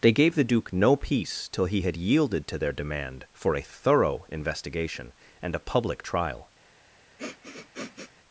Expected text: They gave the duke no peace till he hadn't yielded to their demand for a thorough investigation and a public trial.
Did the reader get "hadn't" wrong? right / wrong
wrong